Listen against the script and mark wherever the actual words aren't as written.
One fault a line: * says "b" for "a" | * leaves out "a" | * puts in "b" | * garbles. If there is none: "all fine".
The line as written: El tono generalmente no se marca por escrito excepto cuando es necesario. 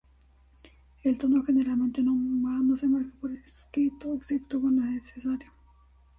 all fine